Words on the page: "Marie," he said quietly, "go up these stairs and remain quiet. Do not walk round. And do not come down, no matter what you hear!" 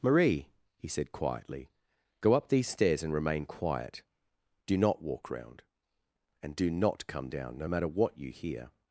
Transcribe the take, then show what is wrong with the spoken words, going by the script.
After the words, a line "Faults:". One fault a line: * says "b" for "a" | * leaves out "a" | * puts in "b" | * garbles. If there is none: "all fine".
"Marie," he said quietly, "go up these stairs and remain quiet. Do not walk round. And do not come down, no matter what you hear!"
Faults:
all fine